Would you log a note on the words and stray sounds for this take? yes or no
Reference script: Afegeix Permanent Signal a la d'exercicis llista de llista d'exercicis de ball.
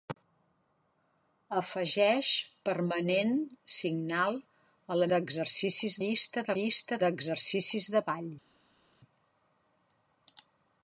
no